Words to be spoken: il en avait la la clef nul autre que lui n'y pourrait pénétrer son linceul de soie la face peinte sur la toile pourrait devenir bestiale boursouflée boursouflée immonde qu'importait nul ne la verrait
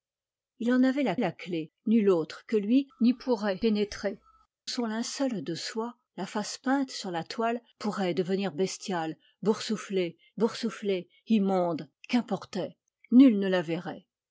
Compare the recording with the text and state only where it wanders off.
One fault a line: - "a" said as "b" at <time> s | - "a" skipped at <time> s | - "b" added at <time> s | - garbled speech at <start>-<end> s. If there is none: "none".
none